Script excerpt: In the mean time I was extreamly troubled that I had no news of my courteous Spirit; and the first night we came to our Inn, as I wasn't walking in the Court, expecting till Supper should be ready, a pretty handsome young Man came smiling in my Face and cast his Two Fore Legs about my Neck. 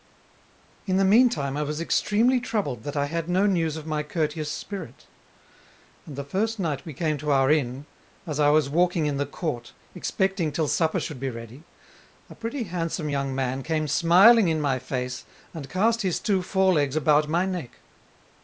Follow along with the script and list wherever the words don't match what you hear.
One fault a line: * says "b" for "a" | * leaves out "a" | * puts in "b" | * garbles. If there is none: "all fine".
* says "was" for "wasn't"